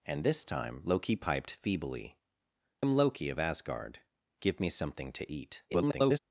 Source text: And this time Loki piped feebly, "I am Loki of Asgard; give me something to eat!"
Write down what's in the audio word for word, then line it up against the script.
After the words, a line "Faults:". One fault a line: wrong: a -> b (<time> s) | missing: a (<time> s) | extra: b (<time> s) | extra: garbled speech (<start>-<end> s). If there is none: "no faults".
And this time Loki piped feebly, "am Loki of Asgard; give me something to eat!" [garbled]
Faults:
missing: I (2.2 s)
extra: garbled speech (5.7-6.2 s)